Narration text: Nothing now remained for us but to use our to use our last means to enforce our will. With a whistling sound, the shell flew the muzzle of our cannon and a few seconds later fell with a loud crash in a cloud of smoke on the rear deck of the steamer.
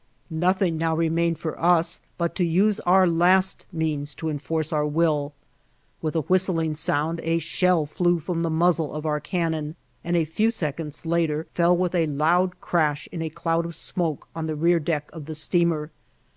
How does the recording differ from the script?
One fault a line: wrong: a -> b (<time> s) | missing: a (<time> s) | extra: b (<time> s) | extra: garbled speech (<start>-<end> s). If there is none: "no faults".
missing: to use our (3.0 s)
wrong: the -> a (7.2 s)
extra: from (8.2 s)